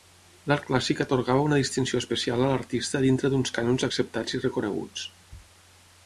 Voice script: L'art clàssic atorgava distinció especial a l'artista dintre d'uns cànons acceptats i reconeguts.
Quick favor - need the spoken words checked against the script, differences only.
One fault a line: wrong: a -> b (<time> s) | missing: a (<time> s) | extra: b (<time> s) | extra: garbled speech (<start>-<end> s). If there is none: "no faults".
extra: una (1.5 s)